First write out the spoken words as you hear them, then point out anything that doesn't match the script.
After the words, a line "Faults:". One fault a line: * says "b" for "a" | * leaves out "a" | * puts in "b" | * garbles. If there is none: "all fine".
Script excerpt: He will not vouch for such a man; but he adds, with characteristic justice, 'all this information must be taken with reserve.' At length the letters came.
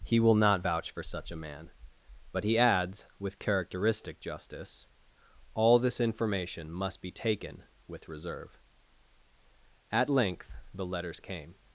He will not vouch for such a man; but he adds, with characteristic justice, 'all this information must be taken with reserve.' At length the letters came.
Faults:
all fine